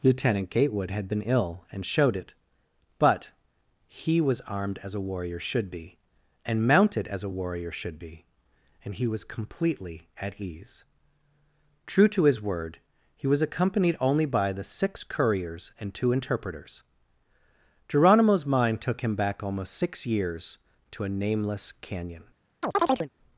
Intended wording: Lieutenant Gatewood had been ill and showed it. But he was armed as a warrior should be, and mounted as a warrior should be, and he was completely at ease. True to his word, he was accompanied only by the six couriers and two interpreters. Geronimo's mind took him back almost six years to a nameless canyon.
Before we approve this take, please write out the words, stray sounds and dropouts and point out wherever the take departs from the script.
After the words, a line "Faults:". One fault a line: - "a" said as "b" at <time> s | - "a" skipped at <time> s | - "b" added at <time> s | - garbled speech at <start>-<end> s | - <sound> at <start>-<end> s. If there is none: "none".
Lieutenant Gatewood had been ill and showed it. But he was armed as a warrior should be, and mounted as a warrior should be, and he was completely at ease. True to his word, he was accompanied only by the six couriers and two interpreters. Geronimo's mind took him back almost six years to a nameless canyon.
Faults:
- chirp at 22.6-23.1 s